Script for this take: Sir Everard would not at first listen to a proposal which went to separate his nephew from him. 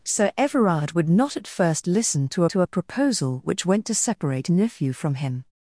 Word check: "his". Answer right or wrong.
wrong